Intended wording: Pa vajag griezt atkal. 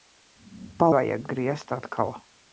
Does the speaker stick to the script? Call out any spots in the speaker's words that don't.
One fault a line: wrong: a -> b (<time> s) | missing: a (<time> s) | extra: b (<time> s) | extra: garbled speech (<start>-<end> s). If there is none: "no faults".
no faults